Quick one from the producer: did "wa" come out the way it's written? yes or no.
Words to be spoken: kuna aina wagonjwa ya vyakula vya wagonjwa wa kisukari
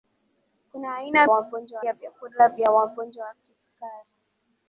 yes